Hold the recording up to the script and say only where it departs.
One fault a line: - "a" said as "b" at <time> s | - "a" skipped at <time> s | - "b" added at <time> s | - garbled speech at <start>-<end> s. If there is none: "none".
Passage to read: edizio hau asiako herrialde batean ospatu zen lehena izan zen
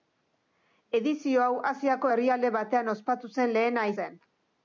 - "izan" skipped at 3.9 s